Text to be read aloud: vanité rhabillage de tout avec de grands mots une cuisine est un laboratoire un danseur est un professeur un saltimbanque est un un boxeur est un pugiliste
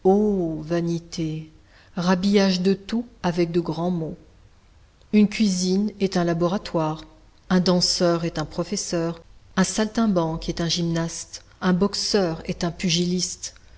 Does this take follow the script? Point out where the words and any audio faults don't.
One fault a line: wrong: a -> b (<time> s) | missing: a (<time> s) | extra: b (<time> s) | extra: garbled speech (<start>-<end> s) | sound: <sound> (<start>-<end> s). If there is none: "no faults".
extra: gymnaste (10.7 s)